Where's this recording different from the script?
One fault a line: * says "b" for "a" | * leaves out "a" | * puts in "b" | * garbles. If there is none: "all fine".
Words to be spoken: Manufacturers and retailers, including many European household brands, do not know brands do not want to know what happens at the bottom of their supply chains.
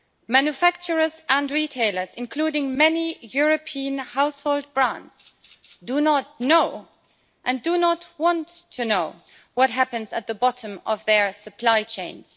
* says "and" for "brands"